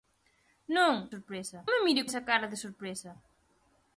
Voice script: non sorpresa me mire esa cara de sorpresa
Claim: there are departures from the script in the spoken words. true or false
false